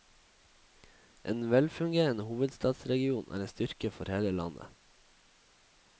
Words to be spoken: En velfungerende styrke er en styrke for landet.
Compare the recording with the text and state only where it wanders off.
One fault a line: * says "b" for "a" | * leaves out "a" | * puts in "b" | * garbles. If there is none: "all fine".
* says "hovedstadsregion" for "styrke"
* puts in "hele"